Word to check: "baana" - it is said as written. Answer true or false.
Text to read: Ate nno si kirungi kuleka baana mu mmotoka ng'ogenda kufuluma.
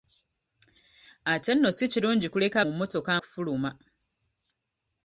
false